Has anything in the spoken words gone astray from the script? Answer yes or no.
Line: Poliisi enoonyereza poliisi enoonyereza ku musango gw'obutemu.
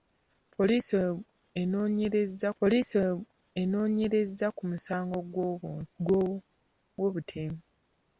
no